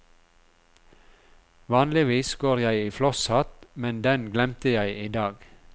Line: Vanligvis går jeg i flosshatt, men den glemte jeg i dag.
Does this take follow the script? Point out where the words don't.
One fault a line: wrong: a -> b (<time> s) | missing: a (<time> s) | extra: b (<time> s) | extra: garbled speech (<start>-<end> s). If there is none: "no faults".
no faults